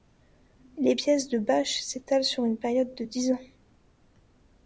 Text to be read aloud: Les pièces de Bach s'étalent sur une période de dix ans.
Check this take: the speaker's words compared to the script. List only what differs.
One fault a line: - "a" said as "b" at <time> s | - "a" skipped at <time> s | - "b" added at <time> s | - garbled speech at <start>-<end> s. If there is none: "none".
none